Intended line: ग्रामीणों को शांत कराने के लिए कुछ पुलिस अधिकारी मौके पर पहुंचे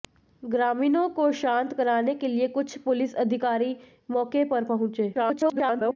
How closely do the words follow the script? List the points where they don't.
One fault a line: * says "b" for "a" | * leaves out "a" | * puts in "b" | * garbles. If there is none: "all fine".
* garbles